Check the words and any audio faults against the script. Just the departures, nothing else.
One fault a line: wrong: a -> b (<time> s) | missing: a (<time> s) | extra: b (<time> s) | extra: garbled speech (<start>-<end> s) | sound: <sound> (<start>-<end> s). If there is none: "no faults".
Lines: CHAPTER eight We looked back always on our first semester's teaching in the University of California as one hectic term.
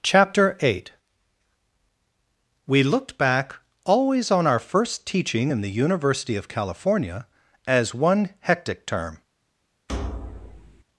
missing: semester's (5.0 s)
sound: thud (9.9-10.8 s)